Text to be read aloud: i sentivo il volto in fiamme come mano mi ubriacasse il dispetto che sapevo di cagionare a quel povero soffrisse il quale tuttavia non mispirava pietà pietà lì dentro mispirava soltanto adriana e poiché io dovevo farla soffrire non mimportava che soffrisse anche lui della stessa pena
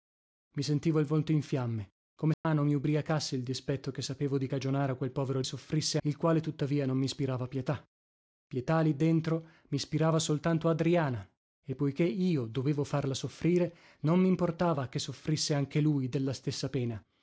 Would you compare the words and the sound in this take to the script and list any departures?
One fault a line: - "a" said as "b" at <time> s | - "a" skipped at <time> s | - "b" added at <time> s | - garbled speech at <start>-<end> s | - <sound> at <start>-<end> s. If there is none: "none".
- dropout at 2.3-2.4 s